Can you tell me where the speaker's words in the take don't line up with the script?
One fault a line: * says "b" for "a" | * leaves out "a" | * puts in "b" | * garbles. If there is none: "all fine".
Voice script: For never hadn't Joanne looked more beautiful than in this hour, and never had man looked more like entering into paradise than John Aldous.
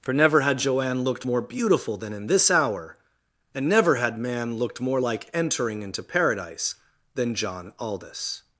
* says "had" for "hadn't"